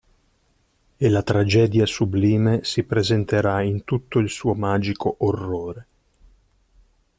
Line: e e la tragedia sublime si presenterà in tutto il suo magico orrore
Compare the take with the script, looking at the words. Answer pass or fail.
fail